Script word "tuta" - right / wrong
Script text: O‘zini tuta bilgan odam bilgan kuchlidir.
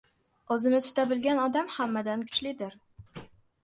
right